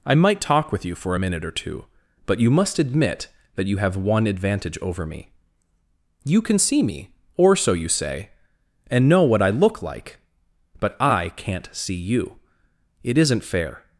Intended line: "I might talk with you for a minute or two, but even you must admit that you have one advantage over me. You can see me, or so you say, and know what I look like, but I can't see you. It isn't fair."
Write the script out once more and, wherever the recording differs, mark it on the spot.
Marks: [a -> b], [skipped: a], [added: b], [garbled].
"I might talk with you for a minute or two, but [skipped: even] you must admit that you have one advantage over me. You can see me, or so you say, and know what I look like, but I can't see you. It isn't fair."